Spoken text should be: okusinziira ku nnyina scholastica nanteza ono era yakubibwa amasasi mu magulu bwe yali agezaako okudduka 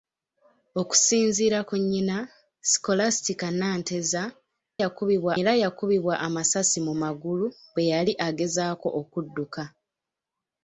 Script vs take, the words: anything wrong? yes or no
yes